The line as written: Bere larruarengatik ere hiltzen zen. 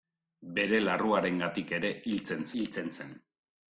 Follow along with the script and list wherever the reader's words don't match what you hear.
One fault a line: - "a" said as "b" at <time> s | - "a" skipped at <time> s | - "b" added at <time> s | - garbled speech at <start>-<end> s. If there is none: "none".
- "hiltzen" added at 2.6 s